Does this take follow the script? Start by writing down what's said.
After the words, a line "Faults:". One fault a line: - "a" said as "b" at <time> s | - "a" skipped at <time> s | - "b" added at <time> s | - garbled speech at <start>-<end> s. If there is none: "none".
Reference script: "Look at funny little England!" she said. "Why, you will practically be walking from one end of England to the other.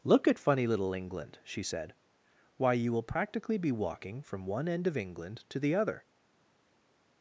"Look at funny little England!" she said. "Why, you will practically be walking from one end of England to the other.
Faults:
none